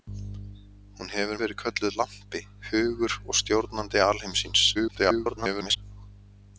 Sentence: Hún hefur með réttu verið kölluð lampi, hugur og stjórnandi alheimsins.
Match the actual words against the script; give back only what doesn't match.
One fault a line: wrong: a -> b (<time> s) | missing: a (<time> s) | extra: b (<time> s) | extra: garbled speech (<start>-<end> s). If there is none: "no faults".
missing: með réttu (1.4 s)
extra: garbled speech (4.7-5.8 s)